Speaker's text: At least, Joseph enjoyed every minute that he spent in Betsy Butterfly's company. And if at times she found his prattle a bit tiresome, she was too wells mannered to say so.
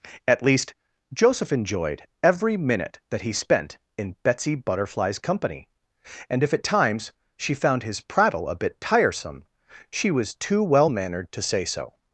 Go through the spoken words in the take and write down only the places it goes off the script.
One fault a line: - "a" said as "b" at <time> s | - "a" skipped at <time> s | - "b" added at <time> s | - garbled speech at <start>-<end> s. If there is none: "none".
- "wells" said as "well" at 10.6 s